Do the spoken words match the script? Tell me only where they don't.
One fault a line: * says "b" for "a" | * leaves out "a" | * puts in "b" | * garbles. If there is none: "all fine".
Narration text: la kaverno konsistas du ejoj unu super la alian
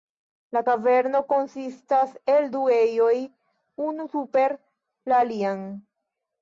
* puts in "el"